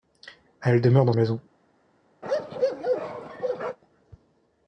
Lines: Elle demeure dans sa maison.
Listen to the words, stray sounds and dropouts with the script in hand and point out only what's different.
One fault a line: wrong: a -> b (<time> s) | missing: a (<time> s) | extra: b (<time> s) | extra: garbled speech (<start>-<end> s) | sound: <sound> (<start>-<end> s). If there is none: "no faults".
missing: sa (1.1 s)
sound: bark (2.2-3.8 s)